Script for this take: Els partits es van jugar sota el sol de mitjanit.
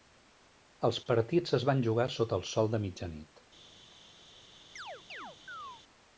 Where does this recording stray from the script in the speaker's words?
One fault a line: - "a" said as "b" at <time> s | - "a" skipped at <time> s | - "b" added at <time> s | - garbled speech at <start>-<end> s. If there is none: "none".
none